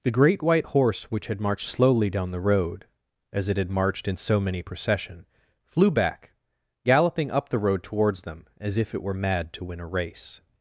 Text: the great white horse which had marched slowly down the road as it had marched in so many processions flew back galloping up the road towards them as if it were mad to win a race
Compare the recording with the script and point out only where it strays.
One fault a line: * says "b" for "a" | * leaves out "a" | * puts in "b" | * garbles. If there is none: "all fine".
* says "procession" for "processions"